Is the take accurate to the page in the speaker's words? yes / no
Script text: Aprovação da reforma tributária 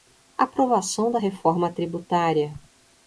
yes